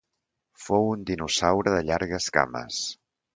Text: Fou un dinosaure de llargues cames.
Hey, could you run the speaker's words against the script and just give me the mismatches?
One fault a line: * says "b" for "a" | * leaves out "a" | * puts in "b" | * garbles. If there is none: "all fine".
all fine